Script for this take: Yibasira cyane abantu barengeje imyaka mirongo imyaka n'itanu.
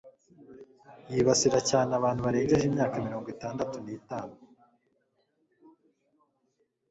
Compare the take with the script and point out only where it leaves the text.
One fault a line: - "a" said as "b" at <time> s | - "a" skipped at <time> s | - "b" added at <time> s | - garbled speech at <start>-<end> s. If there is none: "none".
- "imyaka" said as "itandatu" at 3.3 s